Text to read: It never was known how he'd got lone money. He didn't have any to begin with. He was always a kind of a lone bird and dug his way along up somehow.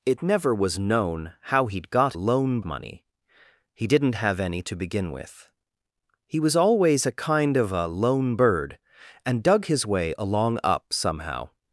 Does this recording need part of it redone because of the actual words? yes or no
no